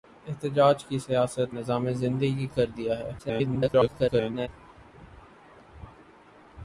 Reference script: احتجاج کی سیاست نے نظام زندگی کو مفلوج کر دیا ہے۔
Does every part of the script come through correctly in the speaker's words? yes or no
no